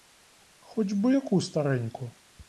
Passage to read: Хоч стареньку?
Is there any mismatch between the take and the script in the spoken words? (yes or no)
yes